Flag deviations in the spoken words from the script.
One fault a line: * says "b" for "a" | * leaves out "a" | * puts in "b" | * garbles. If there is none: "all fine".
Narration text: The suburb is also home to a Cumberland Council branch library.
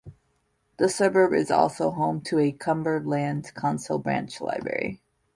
all fine